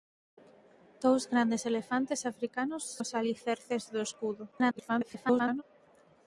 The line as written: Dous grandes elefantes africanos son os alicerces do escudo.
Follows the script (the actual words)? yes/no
no